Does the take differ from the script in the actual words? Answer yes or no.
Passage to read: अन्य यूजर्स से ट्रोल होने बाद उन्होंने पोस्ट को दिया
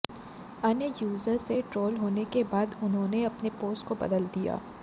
yes